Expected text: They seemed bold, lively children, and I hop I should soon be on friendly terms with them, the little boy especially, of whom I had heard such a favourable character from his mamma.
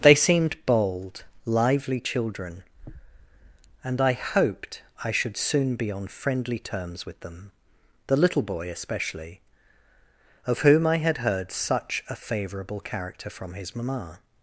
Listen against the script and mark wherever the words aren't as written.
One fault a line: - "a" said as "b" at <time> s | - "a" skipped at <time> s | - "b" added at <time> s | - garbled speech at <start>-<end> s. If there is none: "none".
- "hop" said as "hoped" at 4.1 s